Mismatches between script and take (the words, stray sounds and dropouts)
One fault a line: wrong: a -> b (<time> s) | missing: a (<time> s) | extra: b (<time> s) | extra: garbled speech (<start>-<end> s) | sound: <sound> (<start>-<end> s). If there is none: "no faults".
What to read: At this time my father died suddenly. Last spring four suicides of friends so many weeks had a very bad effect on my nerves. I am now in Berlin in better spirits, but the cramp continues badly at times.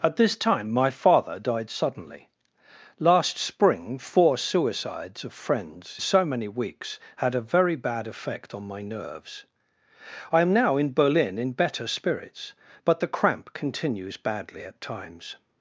no faults